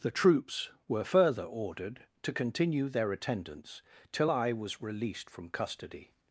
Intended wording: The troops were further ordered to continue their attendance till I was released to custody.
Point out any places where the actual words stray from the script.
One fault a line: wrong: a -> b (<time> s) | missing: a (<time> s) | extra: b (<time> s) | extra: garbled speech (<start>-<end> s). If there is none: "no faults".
wrong: to -> from (5.3 s)